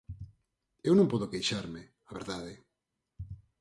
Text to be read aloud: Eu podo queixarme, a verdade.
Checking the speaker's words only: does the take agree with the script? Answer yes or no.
no